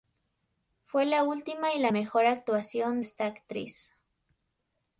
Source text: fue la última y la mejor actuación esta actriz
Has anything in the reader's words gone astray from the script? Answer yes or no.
no